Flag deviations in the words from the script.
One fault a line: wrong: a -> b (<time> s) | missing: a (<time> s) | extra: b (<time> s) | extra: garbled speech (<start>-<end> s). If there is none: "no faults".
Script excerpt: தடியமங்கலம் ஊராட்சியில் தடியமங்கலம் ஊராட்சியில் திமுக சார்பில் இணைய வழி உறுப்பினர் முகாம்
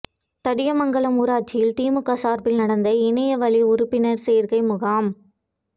missing: தடியமங்கலம் ஊராட்சியில் (1.7 s)
extra: நடந்த (2.6 s)
extra: சேர்க்கை (4.3 s)